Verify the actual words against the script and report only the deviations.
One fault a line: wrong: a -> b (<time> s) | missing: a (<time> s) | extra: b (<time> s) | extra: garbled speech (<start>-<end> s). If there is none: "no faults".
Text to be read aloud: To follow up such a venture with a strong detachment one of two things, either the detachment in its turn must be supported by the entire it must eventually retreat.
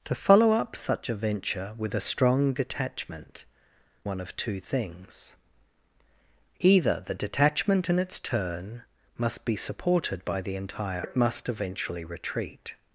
no faults